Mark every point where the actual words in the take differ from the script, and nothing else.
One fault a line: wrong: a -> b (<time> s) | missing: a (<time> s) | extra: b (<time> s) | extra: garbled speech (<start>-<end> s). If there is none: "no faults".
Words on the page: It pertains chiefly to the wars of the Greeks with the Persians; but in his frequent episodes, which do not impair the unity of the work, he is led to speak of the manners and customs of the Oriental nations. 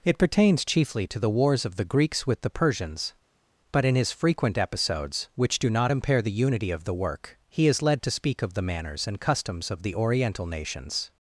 no faults